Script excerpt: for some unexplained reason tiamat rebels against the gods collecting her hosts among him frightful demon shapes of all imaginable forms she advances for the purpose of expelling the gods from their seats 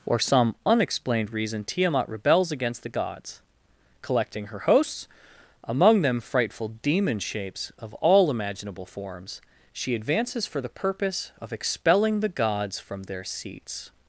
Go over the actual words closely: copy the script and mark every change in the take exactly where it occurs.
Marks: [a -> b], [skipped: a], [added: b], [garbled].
for some unexplained reason tiamat rebels against the gods collecting her hosts among [him -> them] frightful demon shapes of all imaginable forms she advances for the purpose of expelling the gods from their seats